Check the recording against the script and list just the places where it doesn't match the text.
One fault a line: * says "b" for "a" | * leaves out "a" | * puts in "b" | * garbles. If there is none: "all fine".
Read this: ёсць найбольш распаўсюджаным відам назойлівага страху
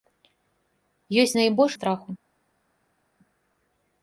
* leaves out "распаўсюджаным відам назойлівага"